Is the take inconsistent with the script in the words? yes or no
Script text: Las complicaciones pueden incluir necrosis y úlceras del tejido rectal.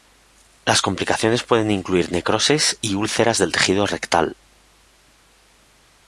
no